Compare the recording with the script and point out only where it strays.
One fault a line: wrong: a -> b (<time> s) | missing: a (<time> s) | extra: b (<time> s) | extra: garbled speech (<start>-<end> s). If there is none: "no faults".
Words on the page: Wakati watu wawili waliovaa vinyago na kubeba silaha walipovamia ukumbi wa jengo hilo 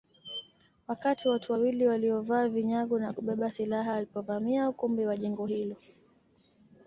no faults